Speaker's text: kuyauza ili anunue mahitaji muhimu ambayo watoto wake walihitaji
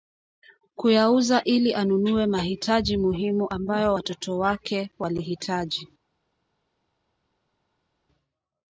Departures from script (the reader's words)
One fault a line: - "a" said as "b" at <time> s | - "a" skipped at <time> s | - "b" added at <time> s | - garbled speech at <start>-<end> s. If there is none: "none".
none